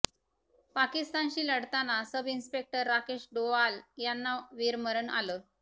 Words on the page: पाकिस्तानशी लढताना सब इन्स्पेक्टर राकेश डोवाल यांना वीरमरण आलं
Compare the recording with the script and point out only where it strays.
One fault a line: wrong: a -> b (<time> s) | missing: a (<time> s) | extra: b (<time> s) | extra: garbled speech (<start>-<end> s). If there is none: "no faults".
no faults